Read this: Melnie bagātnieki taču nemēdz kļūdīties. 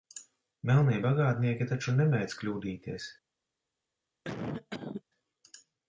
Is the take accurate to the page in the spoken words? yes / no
yes